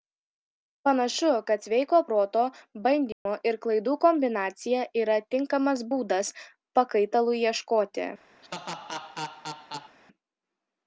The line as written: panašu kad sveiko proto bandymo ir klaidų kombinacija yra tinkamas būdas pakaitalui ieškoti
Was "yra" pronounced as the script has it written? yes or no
yes